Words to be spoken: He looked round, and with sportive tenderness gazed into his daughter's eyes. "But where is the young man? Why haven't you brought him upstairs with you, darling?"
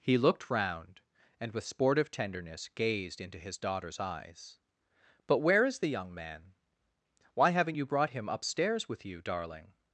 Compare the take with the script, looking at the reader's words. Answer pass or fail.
pass